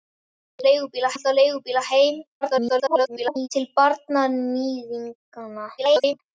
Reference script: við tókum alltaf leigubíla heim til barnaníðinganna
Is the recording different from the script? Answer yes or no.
yes